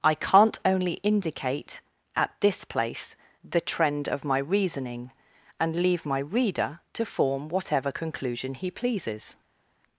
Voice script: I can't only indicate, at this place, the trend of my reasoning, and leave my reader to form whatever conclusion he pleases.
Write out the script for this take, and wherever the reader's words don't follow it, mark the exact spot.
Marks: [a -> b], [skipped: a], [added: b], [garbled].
I can't only indicate, at this place, the trend of my reasoning, and leave my reader to form whatever conclusion he pleases.